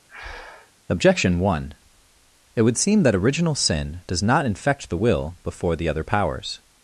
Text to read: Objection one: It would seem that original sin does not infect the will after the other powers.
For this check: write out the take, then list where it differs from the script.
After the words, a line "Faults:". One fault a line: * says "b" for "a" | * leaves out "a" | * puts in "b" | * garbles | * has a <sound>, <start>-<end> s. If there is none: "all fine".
Objection one: It would seem that original sin does not infect the will before the other powers.
Faults:
* has a breath, 0.1-0.7 s
* says "before" for "after"